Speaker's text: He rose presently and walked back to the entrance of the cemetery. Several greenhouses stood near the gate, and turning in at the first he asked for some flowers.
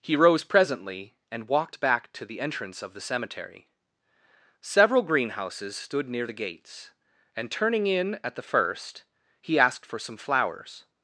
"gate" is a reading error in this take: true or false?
true